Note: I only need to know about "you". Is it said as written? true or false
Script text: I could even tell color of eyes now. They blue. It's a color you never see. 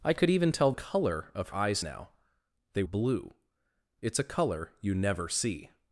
true